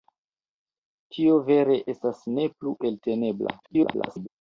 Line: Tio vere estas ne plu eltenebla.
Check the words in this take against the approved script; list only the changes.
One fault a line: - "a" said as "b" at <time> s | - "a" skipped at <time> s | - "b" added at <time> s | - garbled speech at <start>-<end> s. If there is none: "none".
- garbled speech at 3.6-4.3 s